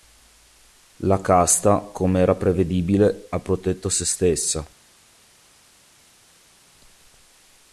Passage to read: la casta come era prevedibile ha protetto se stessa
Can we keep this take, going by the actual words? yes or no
yes